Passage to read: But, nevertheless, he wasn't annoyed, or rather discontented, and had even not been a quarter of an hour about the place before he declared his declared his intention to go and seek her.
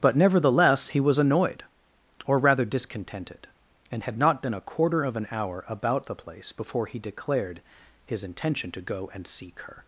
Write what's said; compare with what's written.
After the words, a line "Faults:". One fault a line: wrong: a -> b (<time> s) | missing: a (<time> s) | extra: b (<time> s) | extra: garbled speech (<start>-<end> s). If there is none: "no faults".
But, nevertheless, he was annoyed, or rather discontented, and had not been a quarter of an hour about the place before he declared his intention to go and seek her.
Faults:
wrong: wasn't -> was (1.0 s)
missing: even (4.2 s)
missing: declared his (8.2 s)